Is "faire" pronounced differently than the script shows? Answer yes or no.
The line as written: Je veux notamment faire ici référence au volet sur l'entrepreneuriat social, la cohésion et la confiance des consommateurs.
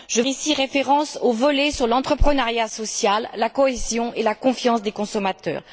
yes